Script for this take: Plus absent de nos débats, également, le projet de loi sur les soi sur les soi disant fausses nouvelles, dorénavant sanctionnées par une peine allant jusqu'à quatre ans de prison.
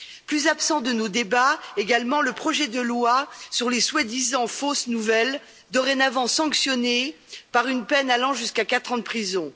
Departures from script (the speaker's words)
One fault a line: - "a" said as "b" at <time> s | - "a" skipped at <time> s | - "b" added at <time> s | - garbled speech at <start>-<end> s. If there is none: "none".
- "sur les soi" skipped at 4.0 s